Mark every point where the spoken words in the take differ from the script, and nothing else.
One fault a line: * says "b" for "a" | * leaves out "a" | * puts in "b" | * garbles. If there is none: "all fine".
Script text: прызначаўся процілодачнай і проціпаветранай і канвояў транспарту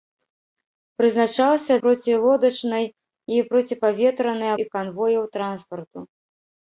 all fine